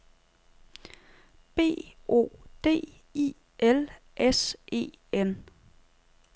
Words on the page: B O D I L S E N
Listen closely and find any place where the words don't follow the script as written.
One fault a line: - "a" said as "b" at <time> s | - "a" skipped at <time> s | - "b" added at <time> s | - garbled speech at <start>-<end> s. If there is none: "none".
none